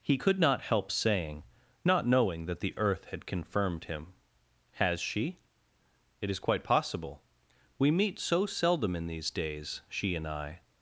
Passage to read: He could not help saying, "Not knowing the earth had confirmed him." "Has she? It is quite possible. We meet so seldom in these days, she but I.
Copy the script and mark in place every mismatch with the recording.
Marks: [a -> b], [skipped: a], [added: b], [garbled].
He could not help saying, "Not knowing [added: that] the earth had confirmed him." "Has she? It is quite possible. We meet so seldom in these days, she [but -> and] I.